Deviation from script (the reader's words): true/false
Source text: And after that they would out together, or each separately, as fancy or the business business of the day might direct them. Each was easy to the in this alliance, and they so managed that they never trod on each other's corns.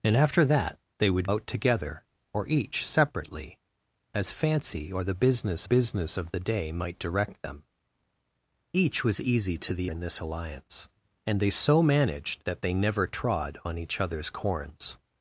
false